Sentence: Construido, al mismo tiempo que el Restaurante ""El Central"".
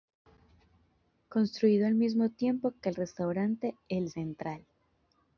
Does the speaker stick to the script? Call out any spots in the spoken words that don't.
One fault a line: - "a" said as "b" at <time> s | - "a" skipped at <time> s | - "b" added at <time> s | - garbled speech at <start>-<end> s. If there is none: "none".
none